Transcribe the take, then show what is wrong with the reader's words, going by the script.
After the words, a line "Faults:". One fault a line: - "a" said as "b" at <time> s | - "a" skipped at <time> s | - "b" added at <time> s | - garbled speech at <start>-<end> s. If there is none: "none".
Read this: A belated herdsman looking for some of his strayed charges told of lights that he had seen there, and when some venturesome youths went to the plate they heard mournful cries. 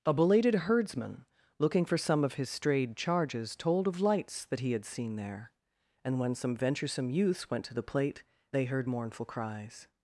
A belated herdsman looking for some of his strayed charges told of lights that he had seen there, and when some venturesome youths went to the plate they heard mournful cries.
Faults:
none